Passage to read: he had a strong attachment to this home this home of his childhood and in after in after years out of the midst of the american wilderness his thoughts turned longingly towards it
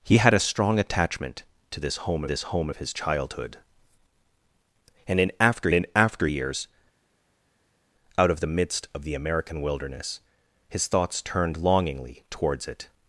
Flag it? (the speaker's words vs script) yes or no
no